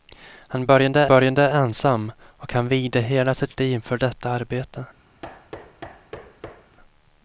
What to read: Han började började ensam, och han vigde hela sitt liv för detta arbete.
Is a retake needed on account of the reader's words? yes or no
no